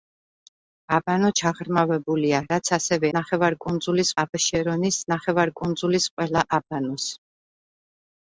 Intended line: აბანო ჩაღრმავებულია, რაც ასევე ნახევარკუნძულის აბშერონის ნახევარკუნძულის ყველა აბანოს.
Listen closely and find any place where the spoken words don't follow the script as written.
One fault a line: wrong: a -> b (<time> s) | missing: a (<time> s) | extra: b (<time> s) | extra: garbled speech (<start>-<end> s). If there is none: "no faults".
no faults